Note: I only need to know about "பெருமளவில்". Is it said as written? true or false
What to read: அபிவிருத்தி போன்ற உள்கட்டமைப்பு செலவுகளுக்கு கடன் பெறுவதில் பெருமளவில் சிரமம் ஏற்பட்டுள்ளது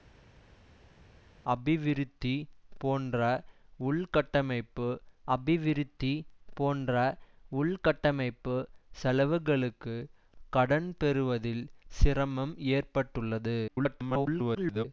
false